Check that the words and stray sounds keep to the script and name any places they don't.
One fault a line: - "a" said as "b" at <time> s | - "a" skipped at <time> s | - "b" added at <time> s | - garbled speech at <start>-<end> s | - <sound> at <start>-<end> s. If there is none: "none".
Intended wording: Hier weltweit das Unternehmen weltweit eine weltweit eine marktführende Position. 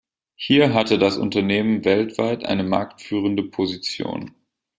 - "weltweit" said as "hatte" at 0.7 s
- "weltweit eine" skipped at 2.6 s